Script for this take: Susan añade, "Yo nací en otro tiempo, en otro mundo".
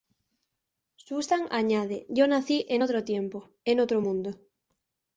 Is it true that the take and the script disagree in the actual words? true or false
false